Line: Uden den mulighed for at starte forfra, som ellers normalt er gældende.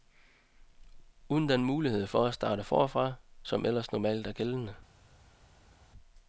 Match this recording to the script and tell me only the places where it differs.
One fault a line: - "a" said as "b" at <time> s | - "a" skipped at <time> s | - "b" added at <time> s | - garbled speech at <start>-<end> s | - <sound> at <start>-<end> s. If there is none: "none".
none